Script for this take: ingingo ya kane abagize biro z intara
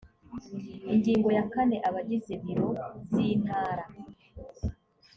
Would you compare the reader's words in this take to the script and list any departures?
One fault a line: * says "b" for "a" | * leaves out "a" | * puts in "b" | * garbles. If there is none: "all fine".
all fine